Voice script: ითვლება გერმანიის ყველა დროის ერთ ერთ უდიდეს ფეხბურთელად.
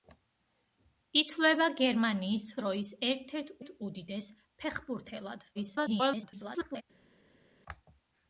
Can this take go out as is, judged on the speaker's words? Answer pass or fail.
fail